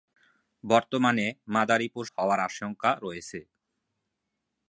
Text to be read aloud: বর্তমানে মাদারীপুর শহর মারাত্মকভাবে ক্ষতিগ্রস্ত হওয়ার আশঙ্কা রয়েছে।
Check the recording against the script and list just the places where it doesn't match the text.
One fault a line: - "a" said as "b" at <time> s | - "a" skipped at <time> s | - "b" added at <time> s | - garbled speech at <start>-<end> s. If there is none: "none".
- "শহর মারাত্মকভাবে ক্ষতিগ্রস্ত" skipped at 2.0 s